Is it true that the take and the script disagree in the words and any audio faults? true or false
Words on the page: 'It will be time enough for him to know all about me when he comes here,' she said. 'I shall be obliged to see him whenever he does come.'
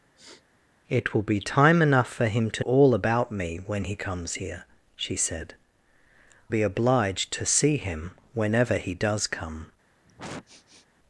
true